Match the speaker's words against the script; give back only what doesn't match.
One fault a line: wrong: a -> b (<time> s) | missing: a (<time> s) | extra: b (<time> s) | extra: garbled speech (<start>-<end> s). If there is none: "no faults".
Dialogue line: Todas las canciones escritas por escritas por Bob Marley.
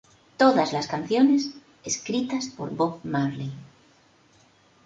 missing: escritas por (2.7 s)